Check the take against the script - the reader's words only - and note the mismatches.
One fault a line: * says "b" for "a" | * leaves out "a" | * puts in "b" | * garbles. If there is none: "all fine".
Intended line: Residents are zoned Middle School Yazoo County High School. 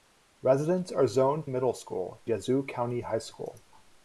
all fine